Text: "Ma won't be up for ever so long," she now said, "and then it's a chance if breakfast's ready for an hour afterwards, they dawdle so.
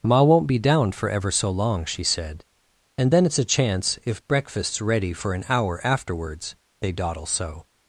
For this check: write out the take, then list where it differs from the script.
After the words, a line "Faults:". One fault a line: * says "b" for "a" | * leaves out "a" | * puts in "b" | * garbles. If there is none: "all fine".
"Ma won't be down for ever so long," she said, "and then it's a chance if breakfast's ready for an hour afterwards, they dawdle so.
Faults:
* says "down" for "up"
* leaves out "now"